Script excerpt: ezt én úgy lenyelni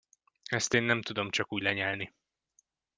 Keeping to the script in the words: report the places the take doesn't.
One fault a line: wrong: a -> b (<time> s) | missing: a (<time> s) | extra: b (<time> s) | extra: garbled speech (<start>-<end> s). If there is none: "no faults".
extra: nem tudom csak (0.8 s)